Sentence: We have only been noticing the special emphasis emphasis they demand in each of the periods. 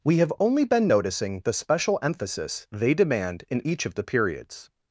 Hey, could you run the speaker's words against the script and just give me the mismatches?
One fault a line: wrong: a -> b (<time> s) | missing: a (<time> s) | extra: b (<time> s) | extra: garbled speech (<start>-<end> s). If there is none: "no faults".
missing: emphasis (2.7 s)